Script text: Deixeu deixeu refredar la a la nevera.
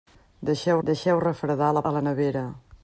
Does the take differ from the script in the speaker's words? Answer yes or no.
no